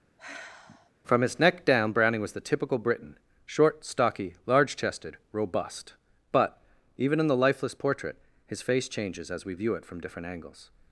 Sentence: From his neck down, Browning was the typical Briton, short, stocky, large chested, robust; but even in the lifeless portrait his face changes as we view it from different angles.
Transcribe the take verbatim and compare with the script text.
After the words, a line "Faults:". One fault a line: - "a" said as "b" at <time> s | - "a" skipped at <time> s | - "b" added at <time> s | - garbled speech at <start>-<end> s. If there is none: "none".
From his neck down, Browning was the typical Briton, short, stocky, large chested, robust; but even in the lifeless portrait his face changes as we view it from different angles.
Faults:
none